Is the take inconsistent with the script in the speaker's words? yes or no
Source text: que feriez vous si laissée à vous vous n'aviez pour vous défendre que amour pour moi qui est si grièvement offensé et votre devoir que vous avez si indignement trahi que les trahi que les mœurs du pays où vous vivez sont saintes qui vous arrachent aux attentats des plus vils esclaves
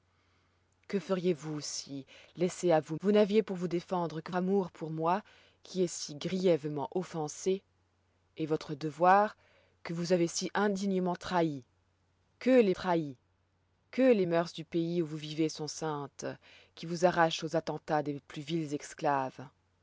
no